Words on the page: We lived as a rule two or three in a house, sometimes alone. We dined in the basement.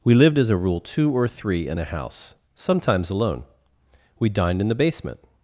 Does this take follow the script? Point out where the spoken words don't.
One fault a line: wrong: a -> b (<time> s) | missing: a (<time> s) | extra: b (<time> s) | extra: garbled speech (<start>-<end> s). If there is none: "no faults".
no faults